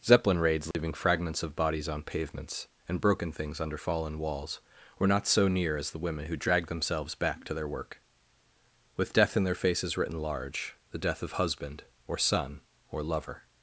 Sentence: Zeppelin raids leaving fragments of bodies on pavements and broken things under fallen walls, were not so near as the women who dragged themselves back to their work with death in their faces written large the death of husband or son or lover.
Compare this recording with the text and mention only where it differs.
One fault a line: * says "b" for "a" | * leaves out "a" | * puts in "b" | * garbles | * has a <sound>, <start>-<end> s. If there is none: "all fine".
* has a dropout, 0.7-0.7 s